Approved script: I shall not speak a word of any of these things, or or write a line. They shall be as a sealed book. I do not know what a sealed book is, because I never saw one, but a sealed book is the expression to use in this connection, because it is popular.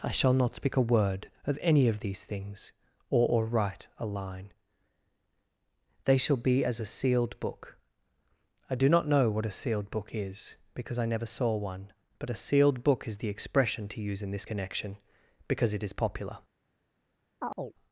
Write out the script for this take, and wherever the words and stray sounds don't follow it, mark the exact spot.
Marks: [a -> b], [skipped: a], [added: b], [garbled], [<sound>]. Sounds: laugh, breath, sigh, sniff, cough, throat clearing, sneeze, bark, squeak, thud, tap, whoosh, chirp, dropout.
I shall not speak a word of any of these things, or or write a line. They shall be as a sealed book. I do not know what a sealed book is, because I never saw one, but a sealed book is the expression to use in this connection, because it is popular. [chirp]